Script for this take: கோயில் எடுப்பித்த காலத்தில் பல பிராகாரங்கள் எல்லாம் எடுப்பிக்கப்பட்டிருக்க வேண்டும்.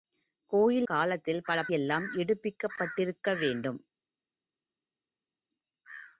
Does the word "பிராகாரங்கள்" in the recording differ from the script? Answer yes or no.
yes